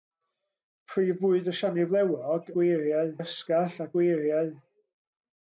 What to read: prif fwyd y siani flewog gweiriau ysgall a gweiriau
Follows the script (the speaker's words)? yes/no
yes